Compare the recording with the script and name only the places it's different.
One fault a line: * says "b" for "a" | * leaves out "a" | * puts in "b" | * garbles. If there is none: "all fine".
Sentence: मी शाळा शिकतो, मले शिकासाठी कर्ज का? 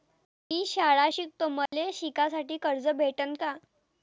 * puts in "भेटन"